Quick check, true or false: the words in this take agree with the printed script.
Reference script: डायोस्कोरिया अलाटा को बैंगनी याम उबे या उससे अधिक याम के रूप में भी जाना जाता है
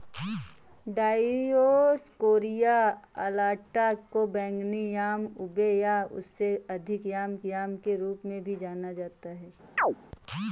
false